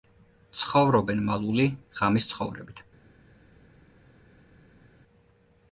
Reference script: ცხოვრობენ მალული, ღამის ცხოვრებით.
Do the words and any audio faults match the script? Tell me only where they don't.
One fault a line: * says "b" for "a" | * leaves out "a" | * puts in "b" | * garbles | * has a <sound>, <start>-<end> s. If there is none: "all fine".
all fine